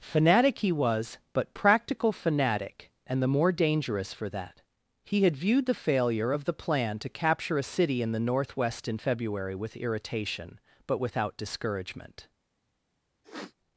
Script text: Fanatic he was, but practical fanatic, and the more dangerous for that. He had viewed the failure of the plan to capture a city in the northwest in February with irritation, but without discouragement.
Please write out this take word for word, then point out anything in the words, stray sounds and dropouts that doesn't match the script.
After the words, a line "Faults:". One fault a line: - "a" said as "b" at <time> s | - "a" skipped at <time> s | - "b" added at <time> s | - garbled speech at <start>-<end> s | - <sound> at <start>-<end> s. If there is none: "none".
Fanatic he was, but practical fanatic, and the more dangerous for that. He had viewed the failure of the plan to capture a city in the northwest in February with irritation, but without discouragement.
Faults:
- sniff at 13.2-13.6 s